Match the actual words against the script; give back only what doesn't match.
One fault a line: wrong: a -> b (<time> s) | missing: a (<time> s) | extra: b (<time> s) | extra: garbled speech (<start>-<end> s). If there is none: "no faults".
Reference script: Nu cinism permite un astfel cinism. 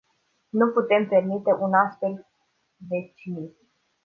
wrong: cinism -> putem (0.7 s)
extra: de (2.9 s)